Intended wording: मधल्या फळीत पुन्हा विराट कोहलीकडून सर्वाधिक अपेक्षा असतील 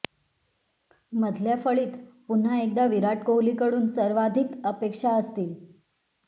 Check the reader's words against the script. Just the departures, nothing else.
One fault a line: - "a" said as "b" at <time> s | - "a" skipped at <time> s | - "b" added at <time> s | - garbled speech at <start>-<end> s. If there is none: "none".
- "एकदा" added at 2.6 s